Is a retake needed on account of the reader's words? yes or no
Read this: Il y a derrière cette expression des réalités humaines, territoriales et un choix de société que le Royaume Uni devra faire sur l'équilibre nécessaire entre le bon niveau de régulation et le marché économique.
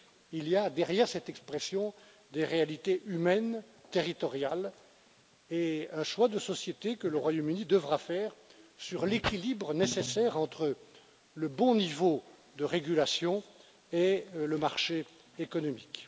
no